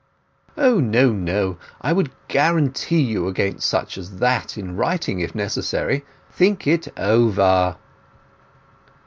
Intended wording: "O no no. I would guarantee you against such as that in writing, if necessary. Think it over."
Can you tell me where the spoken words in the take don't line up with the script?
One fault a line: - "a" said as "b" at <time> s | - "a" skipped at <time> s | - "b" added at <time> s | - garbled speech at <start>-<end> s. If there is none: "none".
none